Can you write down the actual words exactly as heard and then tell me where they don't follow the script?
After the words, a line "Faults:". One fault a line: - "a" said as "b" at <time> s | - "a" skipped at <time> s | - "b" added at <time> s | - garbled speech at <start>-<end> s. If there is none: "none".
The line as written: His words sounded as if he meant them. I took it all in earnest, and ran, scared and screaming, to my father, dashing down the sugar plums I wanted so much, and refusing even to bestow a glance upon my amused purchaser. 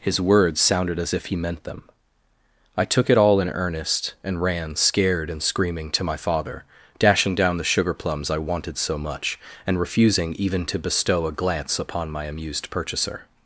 His words sounded as if he meant them. I took it all in earnest, and ran, scared and screaming, to my father, dashing down the sugar plums I wanted so much, and refusing even to bestow a glance upon my amused purchaser.
Faults:
none